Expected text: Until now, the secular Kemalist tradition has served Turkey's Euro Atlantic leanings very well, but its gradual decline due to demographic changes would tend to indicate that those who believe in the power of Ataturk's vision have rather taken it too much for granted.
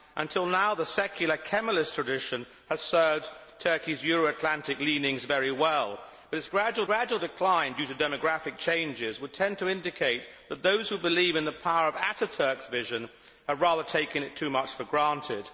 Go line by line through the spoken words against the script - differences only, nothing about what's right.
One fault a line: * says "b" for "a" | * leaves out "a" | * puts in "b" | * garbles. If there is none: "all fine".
* puts in "gradual"